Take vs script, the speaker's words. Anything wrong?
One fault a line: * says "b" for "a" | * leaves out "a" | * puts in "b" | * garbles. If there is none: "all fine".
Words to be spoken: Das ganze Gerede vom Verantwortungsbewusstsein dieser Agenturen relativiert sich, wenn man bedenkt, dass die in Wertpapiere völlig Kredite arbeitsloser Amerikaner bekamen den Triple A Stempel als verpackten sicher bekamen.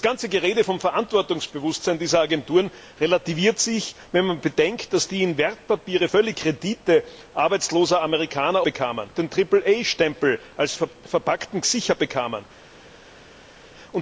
all fine